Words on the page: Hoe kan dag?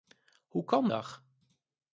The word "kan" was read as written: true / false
true